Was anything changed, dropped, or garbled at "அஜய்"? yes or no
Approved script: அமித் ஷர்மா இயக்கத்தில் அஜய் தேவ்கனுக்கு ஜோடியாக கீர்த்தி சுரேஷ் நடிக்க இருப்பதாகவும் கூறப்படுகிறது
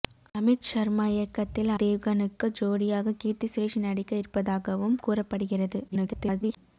yes